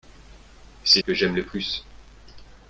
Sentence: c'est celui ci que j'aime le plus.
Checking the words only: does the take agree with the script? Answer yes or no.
no